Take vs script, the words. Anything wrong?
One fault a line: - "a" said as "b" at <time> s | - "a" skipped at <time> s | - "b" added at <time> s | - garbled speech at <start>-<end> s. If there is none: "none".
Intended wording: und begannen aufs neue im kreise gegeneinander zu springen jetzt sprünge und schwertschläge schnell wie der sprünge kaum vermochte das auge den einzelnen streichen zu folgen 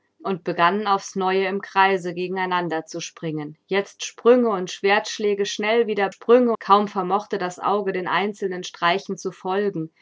none